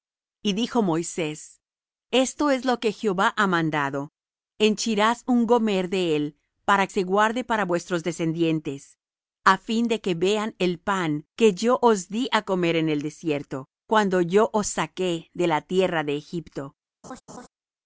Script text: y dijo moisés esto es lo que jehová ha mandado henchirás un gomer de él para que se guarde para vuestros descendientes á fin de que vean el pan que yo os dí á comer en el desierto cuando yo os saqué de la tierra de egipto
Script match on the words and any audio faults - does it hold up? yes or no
no